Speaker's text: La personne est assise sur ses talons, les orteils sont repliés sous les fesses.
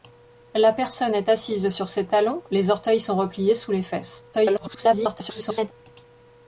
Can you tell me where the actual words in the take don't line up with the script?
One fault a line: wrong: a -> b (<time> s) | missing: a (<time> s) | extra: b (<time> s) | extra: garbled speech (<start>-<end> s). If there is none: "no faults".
extra: garbled speech (4.3-5.7 s)